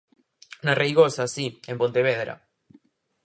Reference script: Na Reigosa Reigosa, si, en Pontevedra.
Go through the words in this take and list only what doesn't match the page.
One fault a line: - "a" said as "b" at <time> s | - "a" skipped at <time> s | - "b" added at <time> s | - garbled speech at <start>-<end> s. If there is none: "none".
- "Reigosa" skipped at 1.2 s